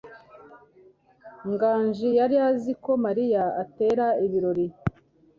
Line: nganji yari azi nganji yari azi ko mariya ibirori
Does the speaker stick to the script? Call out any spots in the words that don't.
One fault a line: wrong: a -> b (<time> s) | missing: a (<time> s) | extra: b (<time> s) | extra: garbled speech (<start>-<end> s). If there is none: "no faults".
missing: nganji yari azi (2.7 s)
extra: atera (3.6 s)